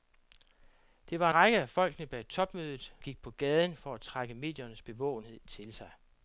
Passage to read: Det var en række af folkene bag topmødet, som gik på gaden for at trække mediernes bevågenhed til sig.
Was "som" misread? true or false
true